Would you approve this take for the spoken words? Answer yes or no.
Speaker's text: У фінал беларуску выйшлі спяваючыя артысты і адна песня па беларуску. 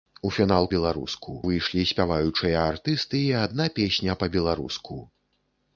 yes